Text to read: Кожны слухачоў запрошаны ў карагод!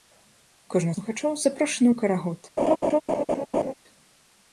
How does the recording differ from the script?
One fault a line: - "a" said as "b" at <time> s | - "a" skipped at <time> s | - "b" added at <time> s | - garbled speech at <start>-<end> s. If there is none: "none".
none